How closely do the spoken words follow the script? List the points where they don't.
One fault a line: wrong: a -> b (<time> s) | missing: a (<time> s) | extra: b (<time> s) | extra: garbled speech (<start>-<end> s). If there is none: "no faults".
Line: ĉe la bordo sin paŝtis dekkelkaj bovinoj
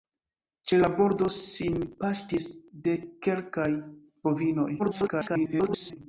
extra: garbled speech (4.8-6.0 s)